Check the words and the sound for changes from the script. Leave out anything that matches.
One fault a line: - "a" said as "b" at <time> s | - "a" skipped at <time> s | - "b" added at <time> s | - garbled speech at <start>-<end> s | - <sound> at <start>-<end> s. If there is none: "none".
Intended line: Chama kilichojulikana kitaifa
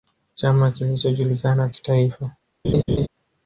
- laugh at 2.6-3.1 s